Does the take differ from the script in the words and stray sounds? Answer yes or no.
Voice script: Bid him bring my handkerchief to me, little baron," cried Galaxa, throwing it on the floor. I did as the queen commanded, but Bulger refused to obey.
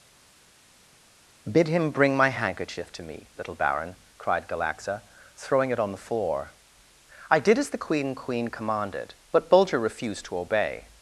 yes